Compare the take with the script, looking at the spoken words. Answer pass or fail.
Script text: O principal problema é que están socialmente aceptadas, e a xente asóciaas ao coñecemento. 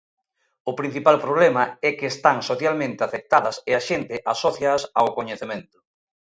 pass